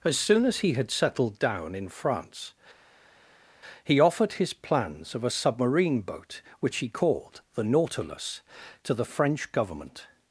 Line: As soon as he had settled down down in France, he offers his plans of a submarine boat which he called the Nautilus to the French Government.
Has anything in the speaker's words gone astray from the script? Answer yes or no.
yes